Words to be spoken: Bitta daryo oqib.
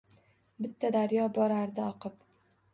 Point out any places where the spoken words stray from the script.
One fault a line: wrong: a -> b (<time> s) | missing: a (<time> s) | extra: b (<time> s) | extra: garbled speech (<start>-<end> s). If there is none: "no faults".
extra: borardi (1.4 s)